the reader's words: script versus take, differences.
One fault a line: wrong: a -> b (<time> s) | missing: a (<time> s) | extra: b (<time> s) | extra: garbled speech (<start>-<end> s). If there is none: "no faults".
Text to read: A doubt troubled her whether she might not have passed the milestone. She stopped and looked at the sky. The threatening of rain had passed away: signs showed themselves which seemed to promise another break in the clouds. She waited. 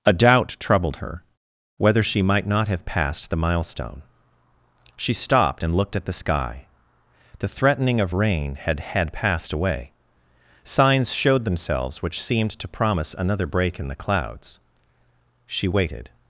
extra: had (8.8 s)